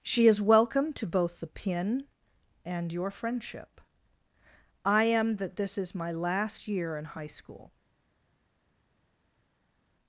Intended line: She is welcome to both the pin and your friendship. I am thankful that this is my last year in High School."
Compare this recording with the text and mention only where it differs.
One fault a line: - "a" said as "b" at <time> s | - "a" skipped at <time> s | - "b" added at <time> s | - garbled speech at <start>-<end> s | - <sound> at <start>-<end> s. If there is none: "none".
- "thankful" skipped at 5.3 s